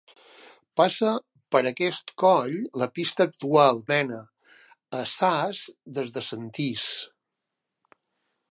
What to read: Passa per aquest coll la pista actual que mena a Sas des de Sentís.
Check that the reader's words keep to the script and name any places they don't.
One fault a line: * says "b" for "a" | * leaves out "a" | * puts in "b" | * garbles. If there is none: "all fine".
* leaves out "que"